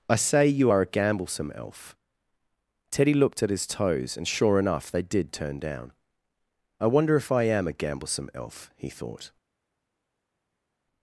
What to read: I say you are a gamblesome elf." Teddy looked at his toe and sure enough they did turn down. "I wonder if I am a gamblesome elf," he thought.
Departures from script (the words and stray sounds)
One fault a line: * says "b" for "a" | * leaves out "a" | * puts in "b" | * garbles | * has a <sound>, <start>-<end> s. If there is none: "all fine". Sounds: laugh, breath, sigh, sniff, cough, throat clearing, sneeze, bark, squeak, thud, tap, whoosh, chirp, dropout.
* says "toes" for "toe"